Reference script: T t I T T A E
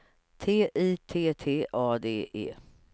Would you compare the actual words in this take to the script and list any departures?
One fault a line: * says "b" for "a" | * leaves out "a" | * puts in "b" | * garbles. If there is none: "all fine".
* leaves out "t"
* puts in "D"